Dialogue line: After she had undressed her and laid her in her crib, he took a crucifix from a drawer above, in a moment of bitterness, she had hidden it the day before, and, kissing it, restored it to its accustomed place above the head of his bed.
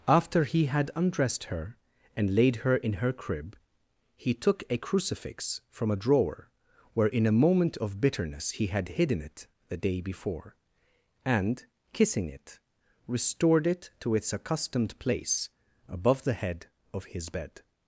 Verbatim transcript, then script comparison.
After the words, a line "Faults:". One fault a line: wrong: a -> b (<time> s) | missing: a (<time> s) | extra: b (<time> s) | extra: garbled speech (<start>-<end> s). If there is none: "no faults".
After he had undressed her and laid her in her crib, he took a crucifix from a drawer where, in a moment of bitterness, he had hidden it the day before, and, kissing it, restored it to its accustomed place above the head of his bed.
Faults:
wrong: she -> he (0.5 s)
wrong: above -> where (6.9 s)
wrong: she -> he (8.5 s)